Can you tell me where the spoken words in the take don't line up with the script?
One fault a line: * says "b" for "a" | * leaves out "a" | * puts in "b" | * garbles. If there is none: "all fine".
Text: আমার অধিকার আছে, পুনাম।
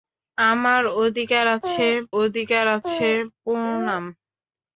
* puts in "অধিকার আছে"